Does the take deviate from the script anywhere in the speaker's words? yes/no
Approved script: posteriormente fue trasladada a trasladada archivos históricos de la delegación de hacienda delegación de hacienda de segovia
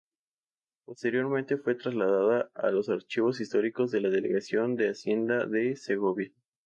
yes